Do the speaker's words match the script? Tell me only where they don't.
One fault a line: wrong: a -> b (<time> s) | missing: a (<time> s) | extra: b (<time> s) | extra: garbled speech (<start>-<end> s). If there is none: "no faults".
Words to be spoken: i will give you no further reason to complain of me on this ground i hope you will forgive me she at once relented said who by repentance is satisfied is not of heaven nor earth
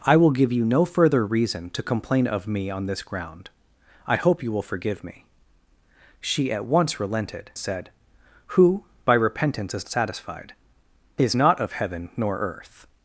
no faults